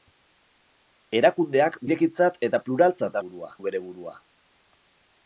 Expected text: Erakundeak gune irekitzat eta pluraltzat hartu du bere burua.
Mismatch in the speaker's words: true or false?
true